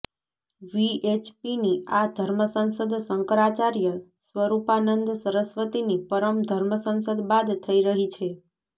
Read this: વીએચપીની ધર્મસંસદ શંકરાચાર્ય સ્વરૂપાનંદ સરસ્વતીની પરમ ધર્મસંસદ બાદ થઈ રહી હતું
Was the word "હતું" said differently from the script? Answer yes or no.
yes